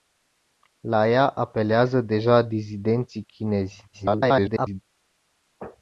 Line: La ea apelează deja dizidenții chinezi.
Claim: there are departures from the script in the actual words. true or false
true